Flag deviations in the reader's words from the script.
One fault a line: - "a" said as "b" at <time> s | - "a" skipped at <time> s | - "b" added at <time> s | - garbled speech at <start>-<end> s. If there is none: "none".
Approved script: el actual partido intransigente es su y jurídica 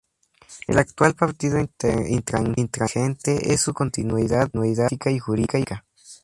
- "continuidad política" added at 3.7 s